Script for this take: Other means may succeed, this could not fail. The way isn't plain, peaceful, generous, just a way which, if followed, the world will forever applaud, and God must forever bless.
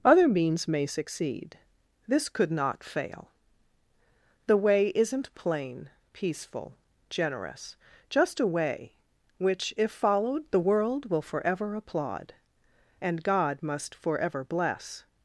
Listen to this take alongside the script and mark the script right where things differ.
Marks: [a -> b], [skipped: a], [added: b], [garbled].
Other means may succeed, this could not fail. The way isn't plain, peaceful, generous, just a way which, if followed, the world will forever applaud, and God must forever bless.